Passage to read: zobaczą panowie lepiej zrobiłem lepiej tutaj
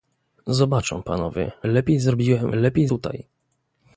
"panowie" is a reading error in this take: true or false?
false